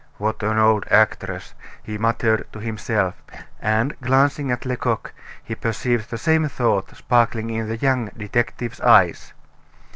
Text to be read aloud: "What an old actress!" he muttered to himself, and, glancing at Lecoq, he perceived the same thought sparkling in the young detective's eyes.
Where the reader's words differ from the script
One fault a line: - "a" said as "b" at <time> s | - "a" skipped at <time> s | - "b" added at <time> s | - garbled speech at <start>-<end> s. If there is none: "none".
none